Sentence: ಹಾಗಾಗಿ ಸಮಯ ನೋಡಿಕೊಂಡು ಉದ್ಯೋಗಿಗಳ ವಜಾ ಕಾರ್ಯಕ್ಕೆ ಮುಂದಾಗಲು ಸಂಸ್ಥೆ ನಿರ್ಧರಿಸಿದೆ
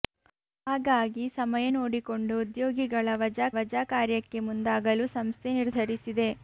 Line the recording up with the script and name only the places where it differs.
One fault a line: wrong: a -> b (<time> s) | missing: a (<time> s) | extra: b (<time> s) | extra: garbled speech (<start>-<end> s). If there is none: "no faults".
extra: ವಜಾ (3.6 s)